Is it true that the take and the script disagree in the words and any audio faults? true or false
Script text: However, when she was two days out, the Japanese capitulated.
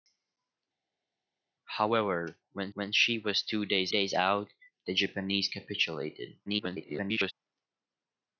true